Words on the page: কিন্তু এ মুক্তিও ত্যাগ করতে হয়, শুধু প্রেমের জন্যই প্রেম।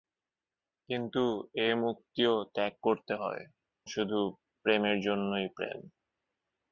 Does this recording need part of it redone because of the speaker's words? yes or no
no